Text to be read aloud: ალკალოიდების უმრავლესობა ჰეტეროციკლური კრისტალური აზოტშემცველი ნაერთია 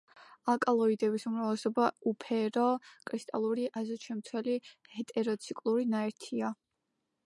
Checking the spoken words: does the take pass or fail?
fail